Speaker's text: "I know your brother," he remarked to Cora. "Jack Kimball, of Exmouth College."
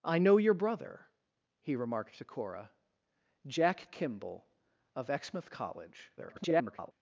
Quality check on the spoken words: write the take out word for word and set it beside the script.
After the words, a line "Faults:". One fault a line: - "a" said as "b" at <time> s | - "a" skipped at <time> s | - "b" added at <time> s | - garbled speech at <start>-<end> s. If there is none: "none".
"I know your brother," he remarked to Cora. "Jack Kimball, of Exmouth College." [garbled]
Faults:
- garbled speech at 6.2-6.9 s